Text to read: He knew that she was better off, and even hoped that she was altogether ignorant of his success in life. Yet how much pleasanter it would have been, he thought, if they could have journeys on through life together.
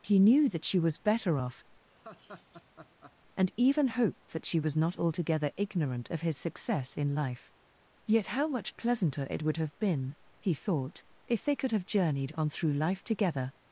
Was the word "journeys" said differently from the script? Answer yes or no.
yes